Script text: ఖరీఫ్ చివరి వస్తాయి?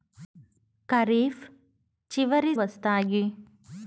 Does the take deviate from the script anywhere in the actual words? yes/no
no